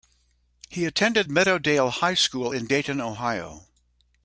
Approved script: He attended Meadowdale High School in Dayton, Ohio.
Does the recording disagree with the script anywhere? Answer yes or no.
no